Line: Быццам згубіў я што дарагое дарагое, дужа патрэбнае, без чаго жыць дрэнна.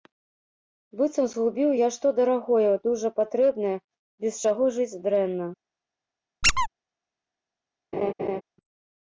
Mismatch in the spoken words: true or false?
true